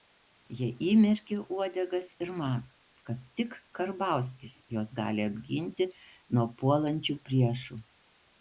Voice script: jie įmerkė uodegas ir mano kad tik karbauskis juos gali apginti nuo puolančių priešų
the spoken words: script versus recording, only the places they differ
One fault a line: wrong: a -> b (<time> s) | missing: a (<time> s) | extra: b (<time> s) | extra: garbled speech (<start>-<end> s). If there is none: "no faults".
no faults